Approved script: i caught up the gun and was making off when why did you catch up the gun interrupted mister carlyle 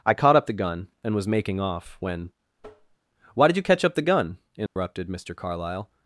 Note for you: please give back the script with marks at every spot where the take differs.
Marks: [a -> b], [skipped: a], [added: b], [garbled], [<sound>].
i caught up the gun and was making off when [tap] why did you catch up the gun interrupted [dropout] mister carlyle